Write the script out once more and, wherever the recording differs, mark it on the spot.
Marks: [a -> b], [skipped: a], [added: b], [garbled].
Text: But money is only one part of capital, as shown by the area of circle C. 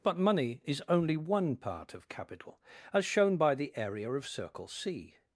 But money is only one part of capital, as shown by the area of circle C.